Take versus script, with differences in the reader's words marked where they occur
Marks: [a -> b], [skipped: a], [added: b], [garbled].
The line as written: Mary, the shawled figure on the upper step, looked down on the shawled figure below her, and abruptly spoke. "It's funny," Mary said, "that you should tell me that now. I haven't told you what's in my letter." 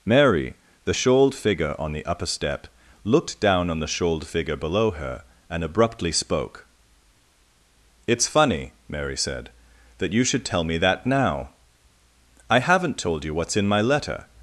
Mary, the shawled figure on the upper step, looked down on the shawled figure below her, and abruptly spoke. "It's funny," Mary said, "that you should tell me that now. I haven't told you what's in my letter."